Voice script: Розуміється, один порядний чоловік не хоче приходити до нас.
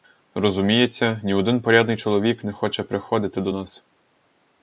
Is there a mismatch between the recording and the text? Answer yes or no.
yes